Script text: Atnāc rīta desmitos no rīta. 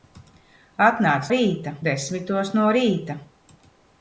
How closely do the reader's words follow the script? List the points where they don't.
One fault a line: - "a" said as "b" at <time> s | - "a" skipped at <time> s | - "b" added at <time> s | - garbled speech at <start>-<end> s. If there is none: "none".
none